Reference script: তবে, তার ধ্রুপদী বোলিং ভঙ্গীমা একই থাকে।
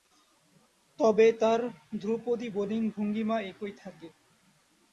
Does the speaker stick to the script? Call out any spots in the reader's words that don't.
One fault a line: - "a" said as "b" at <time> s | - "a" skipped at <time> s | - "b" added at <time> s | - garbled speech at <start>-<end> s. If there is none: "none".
none